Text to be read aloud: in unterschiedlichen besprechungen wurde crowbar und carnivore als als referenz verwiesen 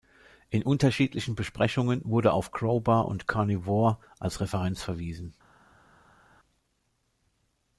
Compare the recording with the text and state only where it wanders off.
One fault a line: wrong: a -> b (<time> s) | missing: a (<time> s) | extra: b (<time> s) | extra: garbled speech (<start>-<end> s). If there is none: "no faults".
extra: auf (2.3 s)
missing: als (4.4 s)